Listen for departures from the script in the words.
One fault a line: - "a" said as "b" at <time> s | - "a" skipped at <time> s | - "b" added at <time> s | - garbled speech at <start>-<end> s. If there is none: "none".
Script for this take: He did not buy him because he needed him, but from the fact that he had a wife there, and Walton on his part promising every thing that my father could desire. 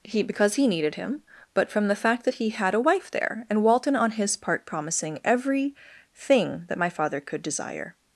- "did not buy him" skipped at 0.2 s